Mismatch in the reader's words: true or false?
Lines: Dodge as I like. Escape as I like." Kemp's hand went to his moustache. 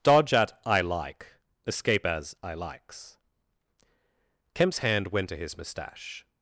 true